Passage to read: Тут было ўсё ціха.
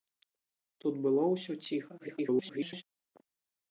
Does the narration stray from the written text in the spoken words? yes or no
yes